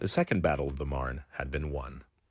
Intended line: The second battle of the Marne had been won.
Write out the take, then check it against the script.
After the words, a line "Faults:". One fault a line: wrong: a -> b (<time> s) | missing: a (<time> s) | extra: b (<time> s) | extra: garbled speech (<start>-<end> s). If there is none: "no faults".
The second battle of the Marne had been won.
Faults:
no faults